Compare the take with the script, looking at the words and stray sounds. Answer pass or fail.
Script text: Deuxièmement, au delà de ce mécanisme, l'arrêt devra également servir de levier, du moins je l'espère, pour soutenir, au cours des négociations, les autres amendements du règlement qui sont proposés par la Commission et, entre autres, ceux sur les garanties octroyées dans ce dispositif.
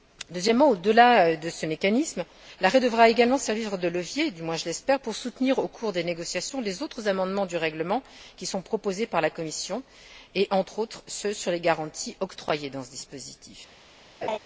fail